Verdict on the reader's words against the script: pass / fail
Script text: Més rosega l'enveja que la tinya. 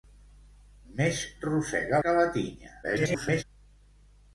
fail